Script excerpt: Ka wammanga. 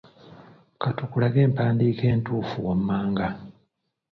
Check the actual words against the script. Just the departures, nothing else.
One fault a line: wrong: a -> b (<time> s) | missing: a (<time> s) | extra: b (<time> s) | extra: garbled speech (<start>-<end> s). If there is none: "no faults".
extra: tukulage empandiika entuufu (1.0 s)